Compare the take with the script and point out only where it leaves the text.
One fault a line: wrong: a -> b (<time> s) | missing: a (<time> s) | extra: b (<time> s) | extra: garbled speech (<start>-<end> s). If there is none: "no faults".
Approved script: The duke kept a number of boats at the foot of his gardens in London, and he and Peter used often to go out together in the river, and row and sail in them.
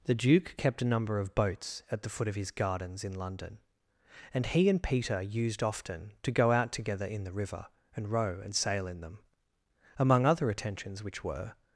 extra: Among other attentions which were (10.0 s)